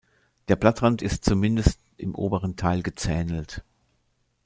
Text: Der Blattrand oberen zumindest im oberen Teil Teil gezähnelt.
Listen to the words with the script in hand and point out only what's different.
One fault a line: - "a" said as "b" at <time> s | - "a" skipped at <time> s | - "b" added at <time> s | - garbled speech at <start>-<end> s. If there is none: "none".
- "oberen" said as "ist" at 1.0 s
- "Teil" skipped at 2.8 s